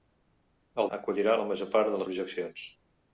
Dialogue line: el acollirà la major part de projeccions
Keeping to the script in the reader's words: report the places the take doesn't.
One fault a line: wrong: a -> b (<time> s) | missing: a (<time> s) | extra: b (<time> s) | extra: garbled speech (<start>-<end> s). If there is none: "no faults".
no faults